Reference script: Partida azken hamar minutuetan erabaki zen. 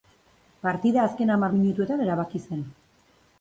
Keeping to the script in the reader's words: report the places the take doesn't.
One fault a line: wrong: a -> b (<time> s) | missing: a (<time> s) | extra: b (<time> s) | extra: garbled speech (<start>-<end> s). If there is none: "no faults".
no faults